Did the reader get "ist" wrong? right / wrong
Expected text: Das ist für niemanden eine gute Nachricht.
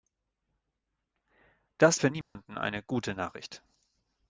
wrong